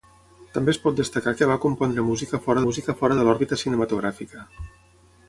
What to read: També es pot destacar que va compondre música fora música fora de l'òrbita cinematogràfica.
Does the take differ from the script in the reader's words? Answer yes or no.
no